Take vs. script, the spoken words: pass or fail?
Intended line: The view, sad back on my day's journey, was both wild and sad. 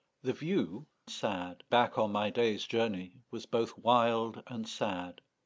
pass